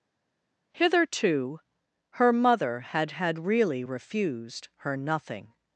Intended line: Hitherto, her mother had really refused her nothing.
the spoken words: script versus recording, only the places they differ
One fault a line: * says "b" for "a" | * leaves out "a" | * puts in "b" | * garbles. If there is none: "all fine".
* puts in "had"